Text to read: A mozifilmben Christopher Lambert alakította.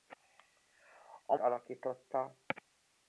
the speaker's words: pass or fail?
fail